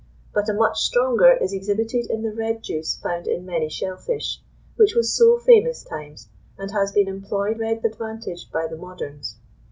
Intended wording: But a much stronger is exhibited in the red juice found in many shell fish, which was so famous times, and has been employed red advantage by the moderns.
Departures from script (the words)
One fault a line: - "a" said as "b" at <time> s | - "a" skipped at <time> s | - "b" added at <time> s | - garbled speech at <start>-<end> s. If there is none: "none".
none